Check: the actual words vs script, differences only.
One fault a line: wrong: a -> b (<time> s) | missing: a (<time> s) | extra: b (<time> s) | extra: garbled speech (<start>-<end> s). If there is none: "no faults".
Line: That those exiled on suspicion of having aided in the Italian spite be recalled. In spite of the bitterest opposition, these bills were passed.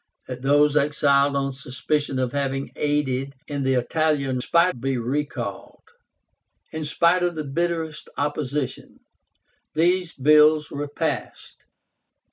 no faults